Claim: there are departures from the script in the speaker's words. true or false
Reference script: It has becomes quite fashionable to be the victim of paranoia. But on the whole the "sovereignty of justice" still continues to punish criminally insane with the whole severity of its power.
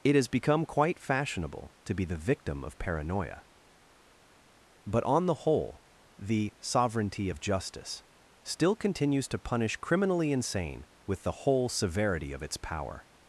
true